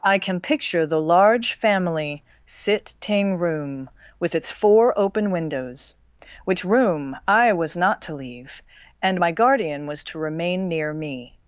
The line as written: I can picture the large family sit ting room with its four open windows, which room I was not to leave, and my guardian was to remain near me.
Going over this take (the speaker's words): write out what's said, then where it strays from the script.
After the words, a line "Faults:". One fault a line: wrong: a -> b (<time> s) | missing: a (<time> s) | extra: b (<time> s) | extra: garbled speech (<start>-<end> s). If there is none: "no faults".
I can picture the large family sit ting room with its four open windows, which room I was not to leave, and my guardian was to remain near me.
Faults:
no faults